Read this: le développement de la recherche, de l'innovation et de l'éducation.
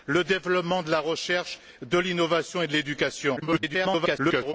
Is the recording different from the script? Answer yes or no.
yes